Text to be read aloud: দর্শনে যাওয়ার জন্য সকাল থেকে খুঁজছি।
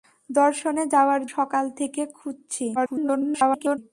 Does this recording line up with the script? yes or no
no